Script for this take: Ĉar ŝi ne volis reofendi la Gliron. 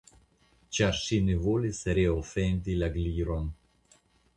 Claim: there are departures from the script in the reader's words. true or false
false